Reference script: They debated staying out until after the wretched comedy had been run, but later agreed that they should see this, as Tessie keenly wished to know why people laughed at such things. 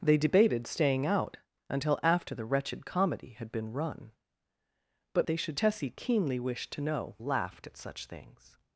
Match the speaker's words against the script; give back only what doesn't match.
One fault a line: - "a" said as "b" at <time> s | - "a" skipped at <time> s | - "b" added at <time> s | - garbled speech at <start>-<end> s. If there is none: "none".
- "later agreed that" skipped at 5.3 s
- "see this as" skipped at 5.6 s
- "why people" skipped at 7.2 s